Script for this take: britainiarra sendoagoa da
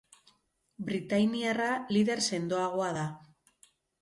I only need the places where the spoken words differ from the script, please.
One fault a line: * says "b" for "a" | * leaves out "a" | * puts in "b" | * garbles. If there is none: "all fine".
* puts in "lider"